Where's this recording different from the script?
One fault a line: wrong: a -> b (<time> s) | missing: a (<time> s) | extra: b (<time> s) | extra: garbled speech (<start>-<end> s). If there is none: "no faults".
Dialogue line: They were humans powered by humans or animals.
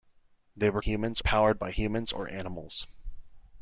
no faults